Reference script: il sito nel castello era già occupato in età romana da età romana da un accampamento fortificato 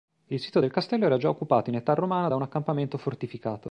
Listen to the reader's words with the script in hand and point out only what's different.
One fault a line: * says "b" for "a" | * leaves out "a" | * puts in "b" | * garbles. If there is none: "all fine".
* says "del" for "nel"
* leaves out "età romana da"